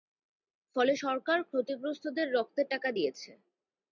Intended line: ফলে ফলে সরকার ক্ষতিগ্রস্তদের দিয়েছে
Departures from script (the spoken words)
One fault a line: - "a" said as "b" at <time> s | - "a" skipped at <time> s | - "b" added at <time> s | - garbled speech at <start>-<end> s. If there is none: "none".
- "ফলে" skipped at 0.9 s
- "রক্তের টাকা" added at 2.3 s